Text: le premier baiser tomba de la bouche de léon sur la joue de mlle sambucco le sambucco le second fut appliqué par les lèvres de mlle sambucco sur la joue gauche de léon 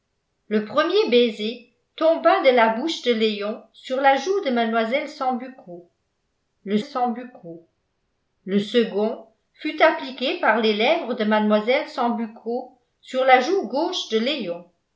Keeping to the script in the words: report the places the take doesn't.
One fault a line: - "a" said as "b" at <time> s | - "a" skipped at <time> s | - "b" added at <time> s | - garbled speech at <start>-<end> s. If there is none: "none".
none